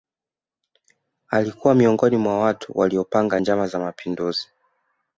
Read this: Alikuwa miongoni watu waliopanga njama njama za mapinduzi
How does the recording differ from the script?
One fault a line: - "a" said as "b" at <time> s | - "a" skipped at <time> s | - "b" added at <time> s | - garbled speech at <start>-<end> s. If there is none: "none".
- "mwa" added at 2.2 s
- "njama" skipped at 3.7 s